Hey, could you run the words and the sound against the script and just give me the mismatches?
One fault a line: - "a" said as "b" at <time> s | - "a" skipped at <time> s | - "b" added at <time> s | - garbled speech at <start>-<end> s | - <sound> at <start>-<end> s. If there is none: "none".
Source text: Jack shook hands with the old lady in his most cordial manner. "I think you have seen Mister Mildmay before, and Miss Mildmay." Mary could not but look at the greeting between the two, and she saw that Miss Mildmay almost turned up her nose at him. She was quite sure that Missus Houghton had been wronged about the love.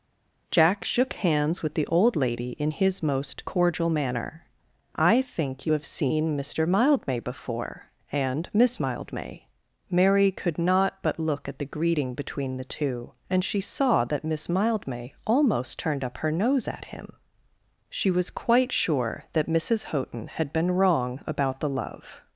- "wronged" said as "wrong" at 20.7 s